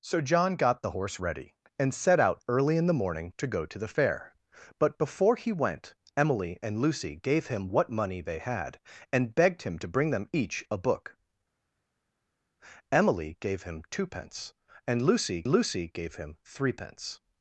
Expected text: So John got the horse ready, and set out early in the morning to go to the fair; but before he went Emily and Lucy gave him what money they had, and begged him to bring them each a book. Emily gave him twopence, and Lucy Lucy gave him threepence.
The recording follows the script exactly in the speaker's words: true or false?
true